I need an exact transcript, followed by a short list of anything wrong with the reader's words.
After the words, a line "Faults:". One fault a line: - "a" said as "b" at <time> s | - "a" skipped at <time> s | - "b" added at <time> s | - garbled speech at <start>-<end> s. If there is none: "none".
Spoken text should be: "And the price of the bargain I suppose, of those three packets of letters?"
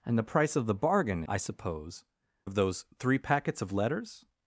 "And the price of the bargain I suppose, of those three packets of letters?"
Faults:
none